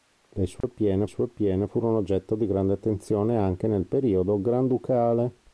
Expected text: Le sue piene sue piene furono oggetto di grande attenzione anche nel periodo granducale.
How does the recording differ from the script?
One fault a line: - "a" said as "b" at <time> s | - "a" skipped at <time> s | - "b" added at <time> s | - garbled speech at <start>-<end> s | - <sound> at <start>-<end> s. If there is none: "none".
- dropout at 0.6-0.6 s